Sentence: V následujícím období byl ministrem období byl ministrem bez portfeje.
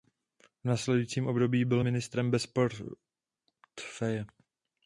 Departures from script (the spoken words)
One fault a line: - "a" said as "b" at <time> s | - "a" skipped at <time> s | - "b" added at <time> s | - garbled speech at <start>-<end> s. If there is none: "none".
- "období byl ministrem" skipped at 2.3 s